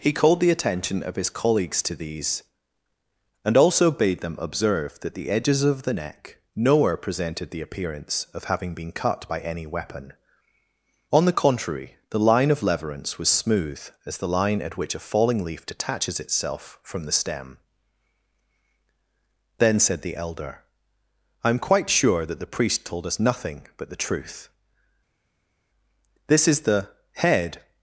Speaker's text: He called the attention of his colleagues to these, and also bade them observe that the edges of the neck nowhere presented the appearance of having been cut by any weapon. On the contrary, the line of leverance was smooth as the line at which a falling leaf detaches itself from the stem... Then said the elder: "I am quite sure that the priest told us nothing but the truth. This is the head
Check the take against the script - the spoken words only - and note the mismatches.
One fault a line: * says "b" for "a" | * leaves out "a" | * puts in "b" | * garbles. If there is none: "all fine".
all fine